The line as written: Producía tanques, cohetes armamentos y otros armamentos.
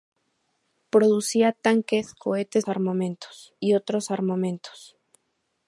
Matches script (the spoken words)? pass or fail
pass